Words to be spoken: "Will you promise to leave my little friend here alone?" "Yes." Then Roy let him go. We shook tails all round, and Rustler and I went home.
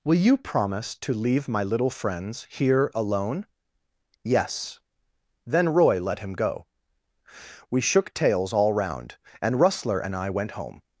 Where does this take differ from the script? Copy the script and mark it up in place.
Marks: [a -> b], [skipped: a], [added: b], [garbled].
"Will you promise to leave my little [friend -> friends] here alone?" "Yes." Then Roy let him go. We shook tails all round, and Rustler and I went home.